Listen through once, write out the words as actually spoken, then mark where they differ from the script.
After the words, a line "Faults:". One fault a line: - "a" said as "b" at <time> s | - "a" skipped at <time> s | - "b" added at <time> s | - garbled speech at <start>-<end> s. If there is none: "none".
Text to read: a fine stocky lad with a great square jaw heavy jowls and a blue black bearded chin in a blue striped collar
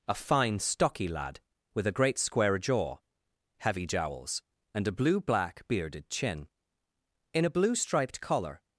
a fine stocky lad with a great square jaw heavy jowls and a blue black bearded chin in a blue striped collar
Faults:
none